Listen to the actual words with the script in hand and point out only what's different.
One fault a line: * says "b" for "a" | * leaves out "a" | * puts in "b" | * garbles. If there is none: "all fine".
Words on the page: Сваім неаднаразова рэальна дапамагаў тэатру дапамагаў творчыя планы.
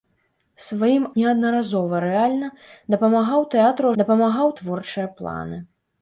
all fine